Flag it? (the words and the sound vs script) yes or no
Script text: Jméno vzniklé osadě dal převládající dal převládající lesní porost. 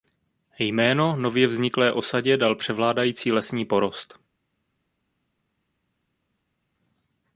yes